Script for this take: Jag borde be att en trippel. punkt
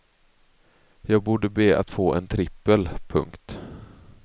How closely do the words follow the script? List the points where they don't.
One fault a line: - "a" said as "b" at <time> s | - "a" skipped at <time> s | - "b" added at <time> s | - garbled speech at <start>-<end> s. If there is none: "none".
- "få" added at 1.9 s